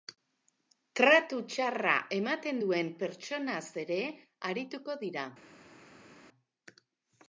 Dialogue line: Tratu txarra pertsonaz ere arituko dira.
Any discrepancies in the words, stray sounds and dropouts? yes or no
yes